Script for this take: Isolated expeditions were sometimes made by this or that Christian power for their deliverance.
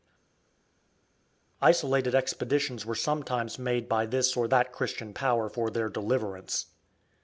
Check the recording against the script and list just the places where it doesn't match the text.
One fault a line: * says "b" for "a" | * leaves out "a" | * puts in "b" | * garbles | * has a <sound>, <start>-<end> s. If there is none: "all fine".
all fine